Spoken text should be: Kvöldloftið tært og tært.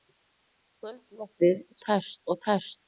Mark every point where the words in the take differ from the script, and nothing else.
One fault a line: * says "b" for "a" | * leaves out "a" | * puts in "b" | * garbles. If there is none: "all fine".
all fine